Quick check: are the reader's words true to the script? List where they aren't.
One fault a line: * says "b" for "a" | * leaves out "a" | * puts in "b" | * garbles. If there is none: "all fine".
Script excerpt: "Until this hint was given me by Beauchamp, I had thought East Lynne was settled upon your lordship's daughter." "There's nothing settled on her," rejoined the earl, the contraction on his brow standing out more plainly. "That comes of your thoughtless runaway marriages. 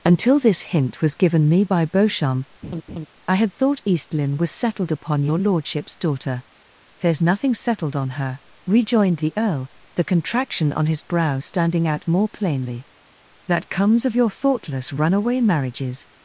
all fine